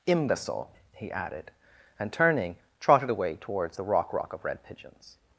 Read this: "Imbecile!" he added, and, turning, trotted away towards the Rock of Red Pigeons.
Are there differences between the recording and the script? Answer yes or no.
yes